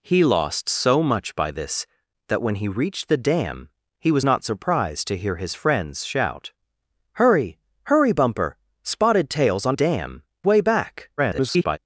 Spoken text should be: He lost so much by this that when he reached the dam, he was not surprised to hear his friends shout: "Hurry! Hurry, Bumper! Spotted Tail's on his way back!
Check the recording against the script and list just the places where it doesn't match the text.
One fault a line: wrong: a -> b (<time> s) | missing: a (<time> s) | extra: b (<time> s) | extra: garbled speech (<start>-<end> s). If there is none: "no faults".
wrong: his -> dam (9.7 s)
extra: garbled speech (11.2-11.8 s)